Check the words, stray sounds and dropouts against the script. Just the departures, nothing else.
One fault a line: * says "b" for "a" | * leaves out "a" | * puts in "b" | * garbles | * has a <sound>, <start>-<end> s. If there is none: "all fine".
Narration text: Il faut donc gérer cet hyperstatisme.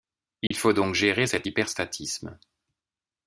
* has a dropout, 0.5-0.5 s